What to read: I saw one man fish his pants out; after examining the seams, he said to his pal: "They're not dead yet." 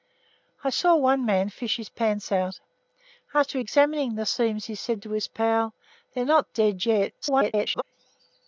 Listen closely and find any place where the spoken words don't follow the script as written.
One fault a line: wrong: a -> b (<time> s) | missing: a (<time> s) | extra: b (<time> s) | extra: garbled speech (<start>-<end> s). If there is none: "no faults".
extra: garbled speech (7.2-7.8 s)